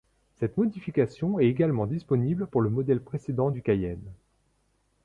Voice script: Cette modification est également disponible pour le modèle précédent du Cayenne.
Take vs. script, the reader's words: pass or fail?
pass